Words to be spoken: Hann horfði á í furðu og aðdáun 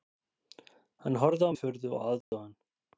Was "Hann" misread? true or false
false